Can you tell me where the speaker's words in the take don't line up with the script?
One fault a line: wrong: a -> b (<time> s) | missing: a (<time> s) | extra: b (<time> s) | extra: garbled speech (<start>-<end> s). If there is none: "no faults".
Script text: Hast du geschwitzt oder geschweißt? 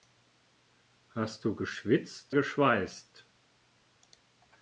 missing: oder (2.4 s)